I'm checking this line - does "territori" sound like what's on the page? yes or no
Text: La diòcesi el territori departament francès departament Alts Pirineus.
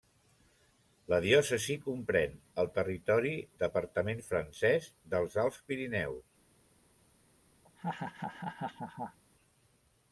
yes